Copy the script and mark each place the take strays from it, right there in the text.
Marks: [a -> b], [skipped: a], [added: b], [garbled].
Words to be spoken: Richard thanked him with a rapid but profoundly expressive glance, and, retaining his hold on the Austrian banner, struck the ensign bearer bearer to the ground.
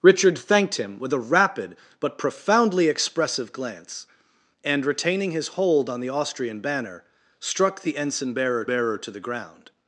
Richard thanked him with a rapid but profoundly expressive glance, and, retaining his hold on the Austrian banner, struck the ensign bearer bearer to the ground.